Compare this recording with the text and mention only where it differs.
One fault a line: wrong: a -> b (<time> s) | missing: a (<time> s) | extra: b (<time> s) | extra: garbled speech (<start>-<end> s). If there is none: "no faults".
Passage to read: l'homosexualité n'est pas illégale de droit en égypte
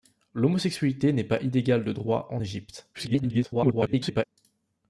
extra: garbled speech (2.9-4.2 s)